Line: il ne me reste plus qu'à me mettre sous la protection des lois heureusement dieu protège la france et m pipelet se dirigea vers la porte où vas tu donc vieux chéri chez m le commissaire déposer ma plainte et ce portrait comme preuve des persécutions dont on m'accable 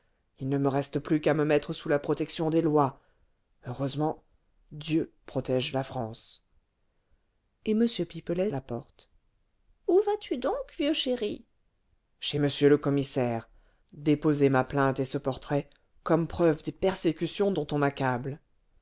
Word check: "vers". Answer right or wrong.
wrong